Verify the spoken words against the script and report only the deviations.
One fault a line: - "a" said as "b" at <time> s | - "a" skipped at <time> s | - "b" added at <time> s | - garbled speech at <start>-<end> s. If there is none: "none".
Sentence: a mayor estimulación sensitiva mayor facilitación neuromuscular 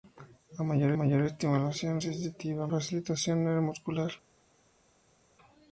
- "mayor" added at 0.9 s
- "mayor" skipped at 2.7 s